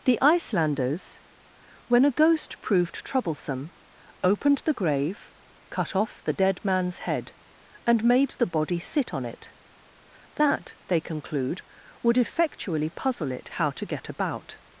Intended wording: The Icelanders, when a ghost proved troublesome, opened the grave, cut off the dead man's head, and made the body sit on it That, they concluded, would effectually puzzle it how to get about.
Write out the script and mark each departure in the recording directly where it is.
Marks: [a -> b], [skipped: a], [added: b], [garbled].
The Icelanders, when a ghost proved troublesome, opened the grave, cut off the dead man's head, and made the body sit on it That, they [concluded, -> conclude] would effectually puzzle it how to get about.